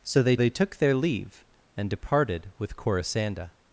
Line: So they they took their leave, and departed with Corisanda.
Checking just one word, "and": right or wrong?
right